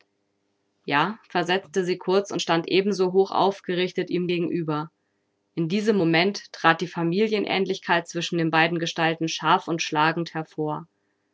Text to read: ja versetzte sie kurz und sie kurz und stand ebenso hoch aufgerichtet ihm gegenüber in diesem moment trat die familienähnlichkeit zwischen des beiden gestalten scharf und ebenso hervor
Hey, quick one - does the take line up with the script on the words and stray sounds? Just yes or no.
no